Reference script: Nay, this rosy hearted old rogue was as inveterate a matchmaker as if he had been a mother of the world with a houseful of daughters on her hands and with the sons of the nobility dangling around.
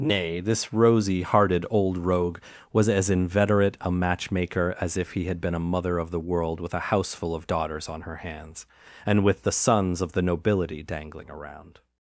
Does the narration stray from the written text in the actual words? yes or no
no